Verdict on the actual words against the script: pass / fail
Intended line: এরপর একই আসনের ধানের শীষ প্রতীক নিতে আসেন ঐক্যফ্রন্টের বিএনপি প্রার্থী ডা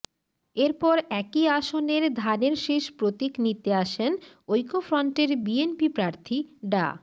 pass